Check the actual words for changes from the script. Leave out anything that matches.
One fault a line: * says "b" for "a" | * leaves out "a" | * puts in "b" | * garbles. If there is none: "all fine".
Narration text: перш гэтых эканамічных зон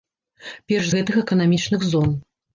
all fine